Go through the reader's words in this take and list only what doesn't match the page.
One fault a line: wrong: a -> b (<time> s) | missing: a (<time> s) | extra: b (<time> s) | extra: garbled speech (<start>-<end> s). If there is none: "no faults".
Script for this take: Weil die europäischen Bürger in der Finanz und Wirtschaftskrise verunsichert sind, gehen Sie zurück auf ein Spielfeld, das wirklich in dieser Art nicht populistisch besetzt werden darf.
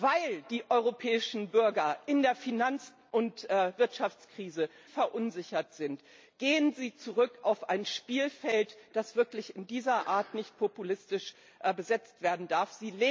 no faults